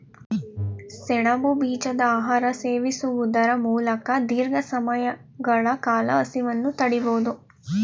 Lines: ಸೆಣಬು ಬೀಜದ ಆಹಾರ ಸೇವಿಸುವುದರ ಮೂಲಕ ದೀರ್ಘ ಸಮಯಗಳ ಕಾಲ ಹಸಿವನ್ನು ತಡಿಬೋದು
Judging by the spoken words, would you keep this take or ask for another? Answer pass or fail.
pass